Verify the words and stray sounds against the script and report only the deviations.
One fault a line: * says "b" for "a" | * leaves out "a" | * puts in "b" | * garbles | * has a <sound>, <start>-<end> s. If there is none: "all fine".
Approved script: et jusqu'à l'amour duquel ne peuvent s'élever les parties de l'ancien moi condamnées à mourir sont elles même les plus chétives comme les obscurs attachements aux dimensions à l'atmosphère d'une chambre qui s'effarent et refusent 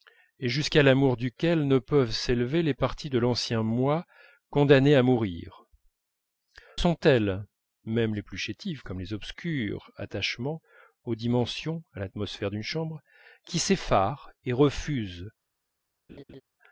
* has a laugh, 16.1-16.4 s